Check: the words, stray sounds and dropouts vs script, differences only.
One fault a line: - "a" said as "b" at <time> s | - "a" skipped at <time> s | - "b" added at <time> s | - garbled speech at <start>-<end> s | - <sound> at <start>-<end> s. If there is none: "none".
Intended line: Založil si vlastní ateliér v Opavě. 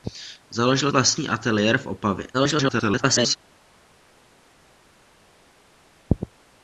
- "si" skipped at 0.9 s
- garbled speech at 2.3-3.4 s